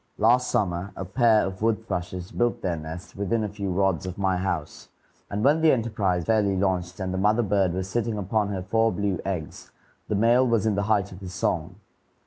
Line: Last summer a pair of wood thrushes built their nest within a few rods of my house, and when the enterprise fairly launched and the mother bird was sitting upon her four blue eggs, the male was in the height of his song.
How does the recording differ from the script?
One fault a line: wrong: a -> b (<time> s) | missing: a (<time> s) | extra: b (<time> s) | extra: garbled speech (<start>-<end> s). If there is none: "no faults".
no faults